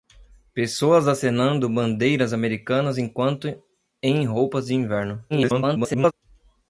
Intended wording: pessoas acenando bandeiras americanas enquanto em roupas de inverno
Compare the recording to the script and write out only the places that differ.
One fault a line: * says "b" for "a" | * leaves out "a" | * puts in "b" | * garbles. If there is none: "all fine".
* garbles